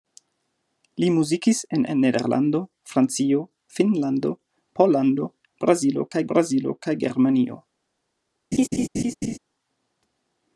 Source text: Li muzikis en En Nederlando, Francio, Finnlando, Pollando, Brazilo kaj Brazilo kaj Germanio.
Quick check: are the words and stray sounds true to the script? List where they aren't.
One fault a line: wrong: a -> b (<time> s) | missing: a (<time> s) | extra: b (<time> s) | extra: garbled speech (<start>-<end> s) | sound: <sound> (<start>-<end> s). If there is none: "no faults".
sound: laugh (8.5-9.4 s)